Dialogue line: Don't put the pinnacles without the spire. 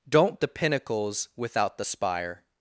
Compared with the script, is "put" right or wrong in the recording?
wrong